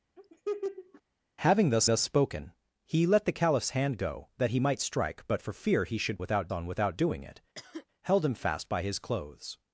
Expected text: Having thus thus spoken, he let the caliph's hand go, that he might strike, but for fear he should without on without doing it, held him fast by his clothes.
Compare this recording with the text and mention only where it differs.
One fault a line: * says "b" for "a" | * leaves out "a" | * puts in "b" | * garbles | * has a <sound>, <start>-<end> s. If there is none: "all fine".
* has a laugh, 0.2-1.0 s
* has a cough, 7.5-7.9 s